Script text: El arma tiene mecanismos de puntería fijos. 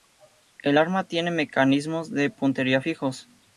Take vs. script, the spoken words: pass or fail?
pass